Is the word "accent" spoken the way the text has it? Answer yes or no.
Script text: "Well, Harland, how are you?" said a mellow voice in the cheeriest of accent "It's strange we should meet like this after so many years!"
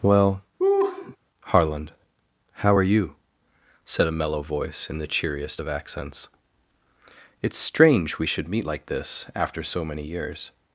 no